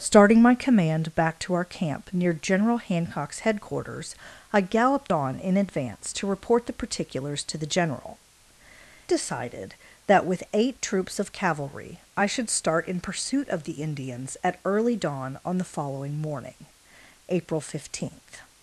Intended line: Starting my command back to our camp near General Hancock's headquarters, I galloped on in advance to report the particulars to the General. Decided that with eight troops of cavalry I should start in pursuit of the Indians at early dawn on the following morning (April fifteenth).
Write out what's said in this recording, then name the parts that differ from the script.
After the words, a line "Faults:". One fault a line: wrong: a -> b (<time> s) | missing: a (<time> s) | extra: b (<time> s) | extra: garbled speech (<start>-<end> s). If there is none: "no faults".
Starting my command back to our camp near General Hancock's headquarters, I galloped on in advance to report the particulars to the General. Decided that with eight troops of cavalry I should start in pursuit of the Indians at early dawn on the following morning (April fifteenth).
Faults:
no faults